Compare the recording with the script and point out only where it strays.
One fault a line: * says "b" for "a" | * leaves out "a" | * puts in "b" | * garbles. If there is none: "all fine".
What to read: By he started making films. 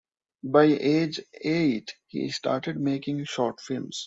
* puts in "age eight"
* puts in "short"